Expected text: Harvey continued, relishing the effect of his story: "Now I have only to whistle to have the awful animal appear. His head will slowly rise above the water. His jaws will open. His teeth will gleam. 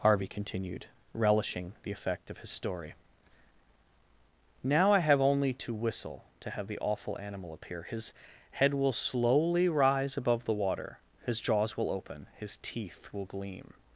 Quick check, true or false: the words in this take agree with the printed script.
true